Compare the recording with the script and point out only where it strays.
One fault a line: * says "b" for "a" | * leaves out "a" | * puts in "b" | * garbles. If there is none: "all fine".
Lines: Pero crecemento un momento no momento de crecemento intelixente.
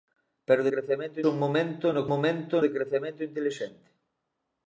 all fine